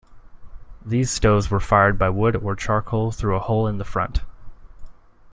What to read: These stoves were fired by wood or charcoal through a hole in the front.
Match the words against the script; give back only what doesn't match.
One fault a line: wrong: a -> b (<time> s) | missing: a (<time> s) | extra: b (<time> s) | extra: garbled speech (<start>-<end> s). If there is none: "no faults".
no faults